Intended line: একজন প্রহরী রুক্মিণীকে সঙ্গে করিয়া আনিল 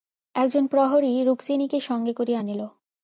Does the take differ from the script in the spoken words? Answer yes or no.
no